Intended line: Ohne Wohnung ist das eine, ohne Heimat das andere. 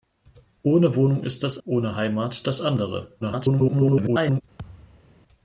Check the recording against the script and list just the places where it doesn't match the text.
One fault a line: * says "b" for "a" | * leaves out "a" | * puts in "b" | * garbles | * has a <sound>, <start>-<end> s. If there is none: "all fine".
* leaves out "eine"
* garbles
* has a thud, 4.6-5.1 s